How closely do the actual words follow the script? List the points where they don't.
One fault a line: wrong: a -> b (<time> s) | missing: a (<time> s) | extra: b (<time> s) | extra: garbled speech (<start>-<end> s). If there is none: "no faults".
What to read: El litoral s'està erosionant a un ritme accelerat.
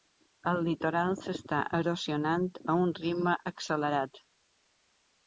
no faults